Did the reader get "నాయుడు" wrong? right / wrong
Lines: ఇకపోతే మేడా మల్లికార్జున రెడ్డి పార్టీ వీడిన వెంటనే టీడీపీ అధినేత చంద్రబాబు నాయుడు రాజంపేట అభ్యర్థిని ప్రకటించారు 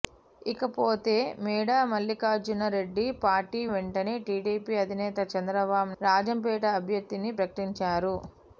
wrong